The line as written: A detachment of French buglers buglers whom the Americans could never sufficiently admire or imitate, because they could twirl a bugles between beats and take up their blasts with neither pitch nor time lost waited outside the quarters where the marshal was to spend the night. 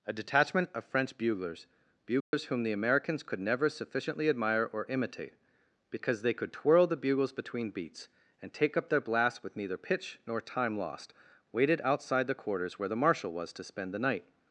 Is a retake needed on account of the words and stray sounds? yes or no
yes